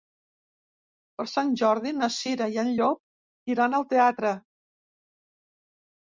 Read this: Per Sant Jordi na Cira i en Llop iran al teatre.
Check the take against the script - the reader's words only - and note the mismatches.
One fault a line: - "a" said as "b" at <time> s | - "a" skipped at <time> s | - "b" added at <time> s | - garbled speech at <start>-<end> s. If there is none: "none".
none